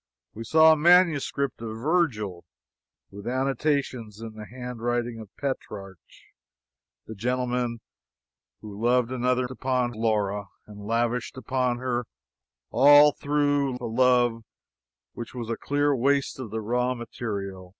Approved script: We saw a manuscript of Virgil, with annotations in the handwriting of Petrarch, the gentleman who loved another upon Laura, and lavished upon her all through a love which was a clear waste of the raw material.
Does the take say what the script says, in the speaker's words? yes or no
yes